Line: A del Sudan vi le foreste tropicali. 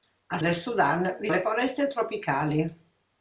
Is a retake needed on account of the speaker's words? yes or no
no